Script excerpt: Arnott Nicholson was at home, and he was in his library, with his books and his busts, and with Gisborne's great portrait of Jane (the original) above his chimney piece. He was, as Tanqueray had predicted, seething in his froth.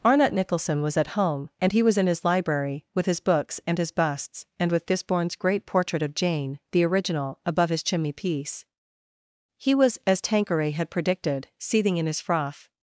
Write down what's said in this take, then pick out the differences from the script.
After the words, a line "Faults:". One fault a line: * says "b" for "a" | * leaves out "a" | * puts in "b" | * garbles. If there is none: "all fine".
Arnott Nicholson was at home, and he was in his library, with his books and his busts, and with Gisborne's great portrait of Jane (the original) above his chimney piece. He was, as Tanqueray had predicted, seething in his froth.
Faults:
all fine